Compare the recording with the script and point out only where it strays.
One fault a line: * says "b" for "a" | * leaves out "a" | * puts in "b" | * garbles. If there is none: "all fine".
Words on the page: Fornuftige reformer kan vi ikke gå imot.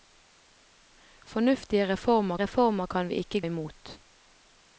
* puts in "reformer"
* leaves out "gå"